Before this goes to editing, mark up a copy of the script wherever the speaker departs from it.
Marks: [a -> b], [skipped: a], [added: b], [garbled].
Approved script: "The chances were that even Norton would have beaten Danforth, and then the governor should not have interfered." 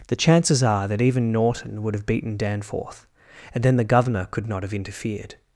"The chances [were -> are] that even Norton would have beaten Danforth, and then the governor [should -> could] not have interfered."